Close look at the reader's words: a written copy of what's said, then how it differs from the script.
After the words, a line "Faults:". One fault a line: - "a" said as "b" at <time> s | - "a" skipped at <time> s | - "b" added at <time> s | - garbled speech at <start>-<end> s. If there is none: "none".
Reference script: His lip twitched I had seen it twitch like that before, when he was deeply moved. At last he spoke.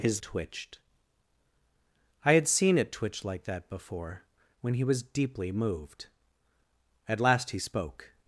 His twitched I had seen it twitch like that before, when he was deeply moved. At last he spoke.
Faults:
- "lip" skipped at 0.2 s